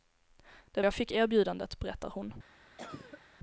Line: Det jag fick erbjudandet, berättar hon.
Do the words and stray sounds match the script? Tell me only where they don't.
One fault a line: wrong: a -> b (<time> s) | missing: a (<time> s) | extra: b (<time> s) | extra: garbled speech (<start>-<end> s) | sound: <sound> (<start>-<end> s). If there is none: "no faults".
sound: cough (2.8-3.2 s)